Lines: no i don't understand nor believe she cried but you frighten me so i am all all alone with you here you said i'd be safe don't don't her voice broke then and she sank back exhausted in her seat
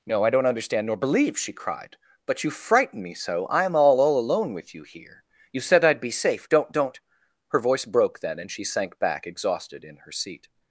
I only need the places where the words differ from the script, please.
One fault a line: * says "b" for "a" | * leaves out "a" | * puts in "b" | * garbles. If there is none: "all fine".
all fine